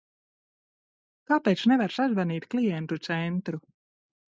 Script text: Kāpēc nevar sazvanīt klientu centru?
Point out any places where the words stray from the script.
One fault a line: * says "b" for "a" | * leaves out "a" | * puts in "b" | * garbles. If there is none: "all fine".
all fine